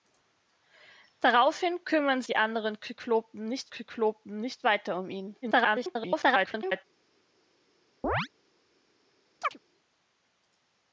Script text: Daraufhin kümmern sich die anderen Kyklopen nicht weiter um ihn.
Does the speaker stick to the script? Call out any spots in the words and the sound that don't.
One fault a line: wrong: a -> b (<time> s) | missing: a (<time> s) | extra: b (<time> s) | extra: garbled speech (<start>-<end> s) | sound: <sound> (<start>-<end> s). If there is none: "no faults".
missing: sich (2.2 s)
extra: Kyklopen nicht (3.7 s)
extra: garbled speech (5.4-6.8 s)
sound: chirp (8.0-8.3 s)
sound: chirp (9.4-9.6 s)